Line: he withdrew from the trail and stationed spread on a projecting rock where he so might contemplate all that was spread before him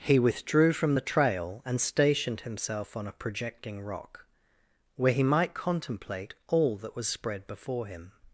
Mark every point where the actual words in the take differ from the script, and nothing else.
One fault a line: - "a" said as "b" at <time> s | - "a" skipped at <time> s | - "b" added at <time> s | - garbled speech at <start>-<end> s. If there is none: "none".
- "spread" said as "himself" at 2.4 s
- "so" skipped at 5.2 s